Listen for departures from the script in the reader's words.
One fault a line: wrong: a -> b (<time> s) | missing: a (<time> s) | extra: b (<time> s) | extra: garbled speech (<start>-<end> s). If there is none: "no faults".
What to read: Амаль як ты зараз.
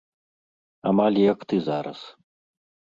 no faults